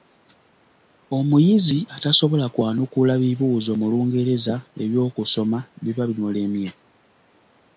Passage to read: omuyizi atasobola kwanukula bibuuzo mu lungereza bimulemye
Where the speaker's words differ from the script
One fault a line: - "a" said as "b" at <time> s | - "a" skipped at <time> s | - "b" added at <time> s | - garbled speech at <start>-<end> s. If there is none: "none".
- "eby'okusoma biba" added at 4.8 s